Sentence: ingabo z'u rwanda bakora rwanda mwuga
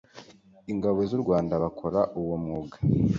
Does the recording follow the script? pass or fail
fail